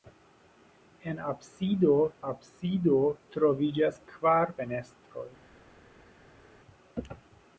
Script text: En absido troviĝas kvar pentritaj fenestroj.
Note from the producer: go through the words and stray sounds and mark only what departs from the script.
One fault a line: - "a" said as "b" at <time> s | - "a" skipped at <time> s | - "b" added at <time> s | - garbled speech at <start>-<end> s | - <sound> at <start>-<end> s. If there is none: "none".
- "absido" added at 2.3 s
- "pentritaj" skipped at 4.5 s